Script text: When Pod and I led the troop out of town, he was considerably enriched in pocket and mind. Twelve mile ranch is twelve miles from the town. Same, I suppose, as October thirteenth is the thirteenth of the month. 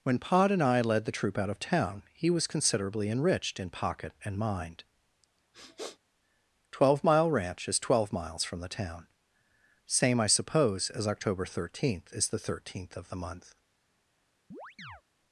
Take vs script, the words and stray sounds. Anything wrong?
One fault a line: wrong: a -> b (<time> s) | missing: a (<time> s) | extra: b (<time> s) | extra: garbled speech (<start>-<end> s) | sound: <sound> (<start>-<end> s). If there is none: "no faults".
sound: sniff (5.5-6.0 s)
sound: chirp (14.5-15.0 s)